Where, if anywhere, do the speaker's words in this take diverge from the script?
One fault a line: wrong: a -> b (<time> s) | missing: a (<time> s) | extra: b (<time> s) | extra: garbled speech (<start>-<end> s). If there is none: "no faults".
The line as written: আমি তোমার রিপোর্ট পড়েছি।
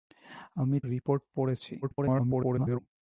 missing: তোমার (0.8 s)
extra: garbled speech (1.8-2.8 s)